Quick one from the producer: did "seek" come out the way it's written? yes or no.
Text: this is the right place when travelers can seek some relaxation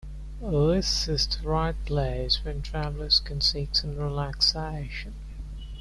yes